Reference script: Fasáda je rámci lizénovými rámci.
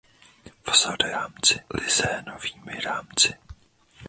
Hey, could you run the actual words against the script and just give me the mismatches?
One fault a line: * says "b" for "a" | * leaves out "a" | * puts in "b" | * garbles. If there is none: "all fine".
all fine